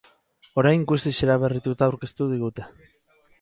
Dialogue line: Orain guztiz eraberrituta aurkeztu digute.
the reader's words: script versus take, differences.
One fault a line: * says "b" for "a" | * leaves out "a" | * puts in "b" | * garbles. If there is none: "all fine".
all fine